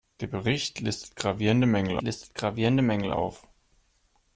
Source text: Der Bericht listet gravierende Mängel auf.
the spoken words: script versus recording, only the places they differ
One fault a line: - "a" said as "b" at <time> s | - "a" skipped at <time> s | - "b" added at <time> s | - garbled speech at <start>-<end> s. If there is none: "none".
- "listet gravierende Mängel" added at 2.0 s